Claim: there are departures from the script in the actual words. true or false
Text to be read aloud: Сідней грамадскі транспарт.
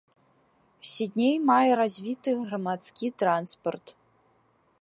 true